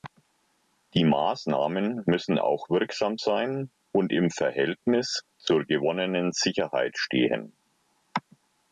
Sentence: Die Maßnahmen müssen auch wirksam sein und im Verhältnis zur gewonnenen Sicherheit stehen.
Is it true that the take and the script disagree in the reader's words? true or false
false